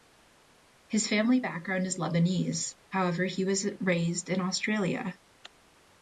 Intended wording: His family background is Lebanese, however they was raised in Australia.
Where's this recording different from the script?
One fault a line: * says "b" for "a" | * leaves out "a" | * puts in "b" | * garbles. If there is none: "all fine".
* says "he" for "they"